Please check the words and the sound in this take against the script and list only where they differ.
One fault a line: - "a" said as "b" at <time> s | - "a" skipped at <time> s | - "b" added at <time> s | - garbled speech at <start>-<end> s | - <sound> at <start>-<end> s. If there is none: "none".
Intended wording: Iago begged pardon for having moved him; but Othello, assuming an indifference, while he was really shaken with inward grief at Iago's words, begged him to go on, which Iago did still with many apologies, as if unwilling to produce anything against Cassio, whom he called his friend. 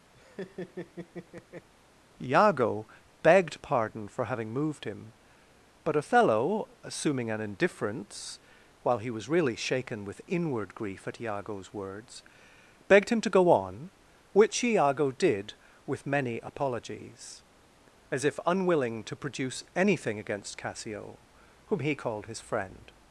- laugh at 0.1-1.7 s
- "still" skipped at 15.5 s